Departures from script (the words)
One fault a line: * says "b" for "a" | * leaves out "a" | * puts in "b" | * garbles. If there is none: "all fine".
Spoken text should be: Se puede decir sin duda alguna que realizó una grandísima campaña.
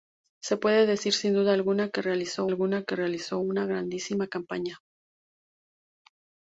* puts in "alguna que realizó"